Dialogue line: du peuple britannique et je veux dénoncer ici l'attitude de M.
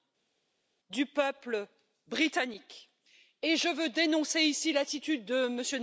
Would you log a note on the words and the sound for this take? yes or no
no